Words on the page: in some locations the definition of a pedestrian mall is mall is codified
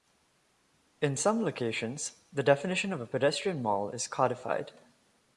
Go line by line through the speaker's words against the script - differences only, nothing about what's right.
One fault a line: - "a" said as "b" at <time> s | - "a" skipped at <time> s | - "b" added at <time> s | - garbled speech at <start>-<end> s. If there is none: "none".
- "mall is" skipped at 4.1 s